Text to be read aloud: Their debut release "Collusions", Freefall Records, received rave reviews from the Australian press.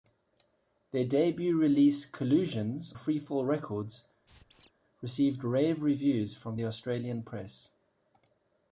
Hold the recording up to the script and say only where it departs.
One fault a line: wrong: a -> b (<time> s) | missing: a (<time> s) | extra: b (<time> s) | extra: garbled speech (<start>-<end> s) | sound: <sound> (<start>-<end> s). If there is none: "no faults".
sound: squeak (4.3-4.7 s)